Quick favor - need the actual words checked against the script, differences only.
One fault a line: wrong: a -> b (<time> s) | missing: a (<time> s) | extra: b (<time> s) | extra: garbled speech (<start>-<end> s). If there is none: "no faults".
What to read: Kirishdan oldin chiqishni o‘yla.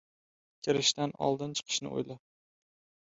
no faults